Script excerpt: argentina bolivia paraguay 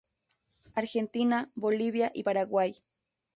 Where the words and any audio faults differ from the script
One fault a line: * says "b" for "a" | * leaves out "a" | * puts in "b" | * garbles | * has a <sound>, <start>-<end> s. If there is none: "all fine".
* puts in "y"